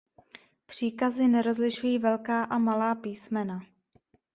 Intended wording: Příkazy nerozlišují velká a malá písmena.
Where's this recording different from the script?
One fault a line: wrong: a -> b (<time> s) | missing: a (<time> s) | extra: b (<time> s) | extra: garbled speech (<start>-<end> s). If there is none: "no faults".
no faults